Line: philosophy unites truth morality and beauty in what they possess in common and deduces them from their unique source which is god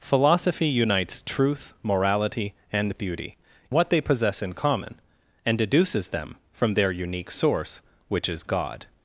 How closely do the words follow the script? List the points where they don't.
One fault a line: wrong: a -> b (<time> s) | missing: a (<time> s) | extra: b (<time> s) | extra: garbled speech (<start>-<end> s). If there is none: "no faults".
missing: in (3.4 s)